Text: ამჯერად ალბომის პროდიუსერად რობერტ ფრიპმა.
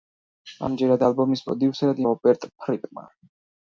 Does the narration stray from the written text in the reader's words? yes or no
no